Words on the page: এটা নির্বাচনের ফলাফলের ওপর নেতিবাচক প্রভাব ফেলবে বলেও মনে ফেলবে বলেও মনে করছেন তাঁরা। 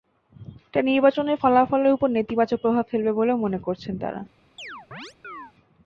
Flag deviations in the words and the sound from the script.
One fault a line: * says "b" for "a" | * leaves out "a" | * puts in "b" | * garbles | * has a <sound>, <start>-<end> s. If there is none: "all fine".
* leaves out "ফেলবে বলেও মনে"
* has a chirp, 4.6-5.5 s